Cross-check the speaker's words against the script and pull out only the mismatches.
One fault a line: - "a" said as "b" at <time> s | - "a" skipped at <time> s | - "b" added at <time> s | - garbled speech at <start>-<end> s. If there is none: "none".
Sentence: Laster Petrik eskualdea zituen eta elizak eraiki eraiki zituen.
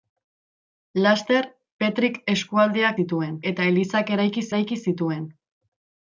none